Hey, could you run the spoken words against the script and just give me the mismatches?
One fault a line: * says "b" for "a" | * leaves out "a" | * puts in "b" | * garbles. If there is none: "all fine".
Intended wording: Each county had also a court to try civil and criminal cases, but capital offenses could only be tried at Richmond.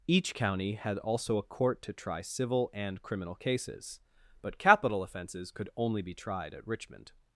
all fine